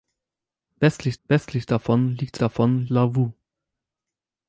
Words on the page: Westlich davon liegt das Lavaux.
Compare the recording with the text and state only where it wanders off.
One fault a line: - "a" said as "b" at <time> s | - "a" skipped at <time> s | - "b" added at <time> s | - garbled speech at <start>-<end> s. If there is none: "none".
- "westlich" added at 1.2 s
- "das" said as "davon" at 2.4 s